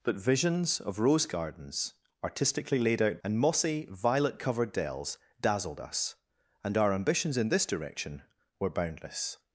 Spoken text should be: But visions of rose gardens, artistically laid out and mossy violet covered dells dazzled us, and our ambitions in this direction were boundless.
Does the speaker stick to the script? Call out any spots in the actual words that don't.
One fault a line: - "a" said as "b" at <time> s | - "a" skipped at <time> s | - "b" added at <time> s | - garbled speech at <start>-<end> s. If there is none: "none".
none